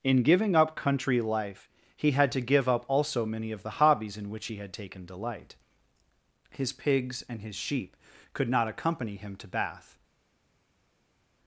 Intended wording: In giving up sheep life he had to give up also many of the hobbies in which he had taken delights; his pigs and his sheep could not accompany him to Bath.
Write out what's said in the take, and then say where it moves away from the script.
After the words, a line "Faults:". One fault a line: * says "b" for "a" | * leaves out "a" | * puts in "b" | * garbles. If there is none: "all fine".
In giving up country life he had to give up also many of the hobbies in which he had taken delight; his pigs and his sheep could not accompany him to Bath.
Faults:
* says "country" for "sheep"
* says "delight" for "delights"